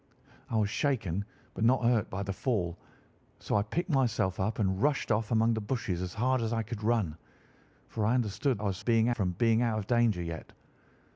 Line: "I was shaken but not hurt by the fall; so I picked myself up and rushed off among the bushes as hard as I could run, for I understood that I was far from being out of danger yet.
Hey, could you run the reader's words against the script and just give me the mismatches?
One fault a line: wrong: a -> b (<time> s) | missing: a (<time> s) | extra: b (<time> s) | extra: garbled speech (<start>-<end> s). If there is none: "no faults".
missing: that (8.6 s)
wrong: far -> being (8.8 s)